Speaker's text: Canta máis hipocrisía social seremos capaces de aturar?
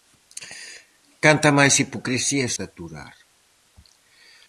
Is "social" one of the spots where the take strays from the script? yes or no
yes